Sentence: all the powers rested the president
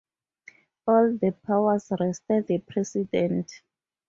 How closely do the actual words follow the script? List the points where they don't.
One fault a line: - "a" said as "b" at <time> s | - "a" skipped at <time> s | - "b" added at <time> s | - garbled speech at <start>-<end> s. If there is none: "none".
none